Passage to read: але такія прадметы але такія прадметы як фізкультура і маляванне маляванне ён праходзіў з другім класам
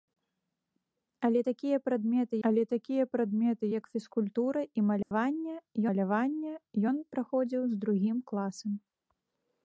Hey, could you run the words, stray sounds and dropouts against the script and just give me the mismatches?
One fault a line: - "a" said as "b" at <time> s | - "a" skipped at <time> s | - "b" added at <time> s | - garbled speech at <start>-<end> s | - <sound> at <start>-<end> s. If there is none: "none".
- dropout at 5.0-5.1 s